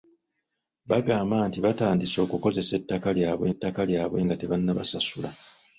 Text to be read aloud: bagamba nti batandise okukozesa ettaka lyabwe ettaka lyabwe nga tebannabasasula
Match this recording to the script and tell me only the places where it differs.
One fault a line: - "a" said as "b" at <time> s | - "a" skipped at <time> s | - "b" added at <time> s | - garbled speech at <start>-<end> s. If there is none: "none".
none